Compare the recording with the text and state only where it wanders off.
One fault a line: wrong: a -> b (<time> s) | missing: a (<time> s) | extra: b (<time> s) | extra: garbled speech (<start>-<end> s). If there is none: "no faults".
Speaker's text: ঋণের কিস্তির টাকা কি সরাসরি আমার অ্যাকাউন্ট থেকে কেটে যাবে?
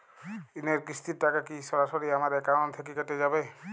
no faults